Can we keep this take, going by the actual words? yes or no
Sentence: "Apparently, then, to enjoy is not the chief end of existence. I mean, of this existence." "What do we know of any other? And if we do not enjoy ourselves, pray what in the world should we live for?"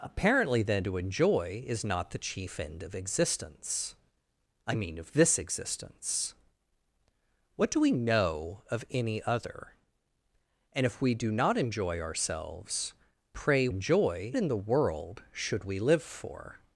no